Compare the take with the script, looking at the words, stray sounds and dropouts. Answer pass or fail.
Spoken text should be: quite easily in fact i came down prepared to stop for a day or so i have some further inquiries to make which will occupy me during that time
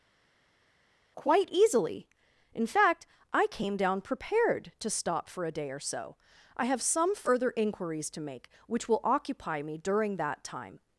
pass